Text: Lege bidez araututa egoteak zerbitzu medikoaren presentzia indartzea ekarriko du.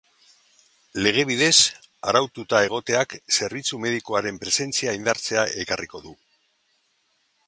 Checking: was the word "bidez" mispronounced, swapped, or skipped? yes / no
no